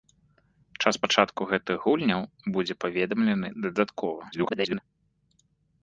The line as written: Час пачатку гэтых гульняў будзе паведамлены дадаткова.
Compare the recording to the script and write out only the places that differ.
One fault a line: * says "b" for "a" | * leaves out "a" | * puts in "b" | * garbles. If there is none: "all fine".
* garbles